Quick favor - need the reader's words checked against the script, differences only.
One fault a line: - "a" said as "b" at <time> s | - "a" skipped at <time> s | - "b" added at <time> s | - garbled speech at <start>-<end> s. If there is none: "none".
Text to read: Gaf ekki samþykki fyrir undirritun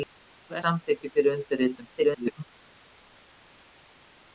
- "ekki" skipped at 0.6 s
- garbled speech at 2.0-2.4 s